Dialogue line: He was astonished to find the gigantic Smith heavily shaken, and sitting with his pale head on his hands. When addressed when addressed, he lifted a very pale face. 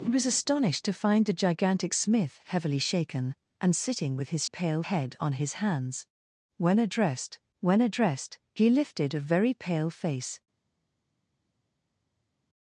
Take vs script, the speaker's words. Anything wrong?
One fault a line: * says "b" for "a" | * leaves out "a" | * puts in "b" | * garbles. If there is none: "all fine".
all fine